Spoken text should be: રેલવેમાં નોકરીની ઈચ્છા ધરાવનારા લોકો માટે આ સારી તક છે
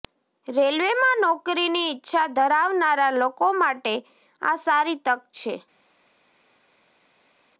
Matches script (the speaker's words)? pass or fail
pass